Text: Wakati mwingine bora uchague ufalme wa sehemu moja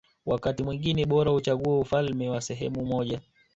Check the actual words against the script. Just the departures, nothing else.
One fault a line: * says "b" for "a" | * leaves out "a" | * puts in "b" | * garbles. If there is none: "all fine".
all fine